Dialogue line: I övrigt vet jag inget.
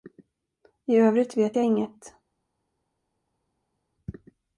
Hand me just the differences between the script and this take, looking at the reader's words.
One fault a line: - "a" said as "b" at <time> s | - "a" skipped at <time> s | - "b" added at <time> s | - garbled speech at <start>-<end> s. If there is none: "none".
none